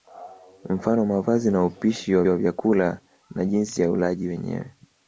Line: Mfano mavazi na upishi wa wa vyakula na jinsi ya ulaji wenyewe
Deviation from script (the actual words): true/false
false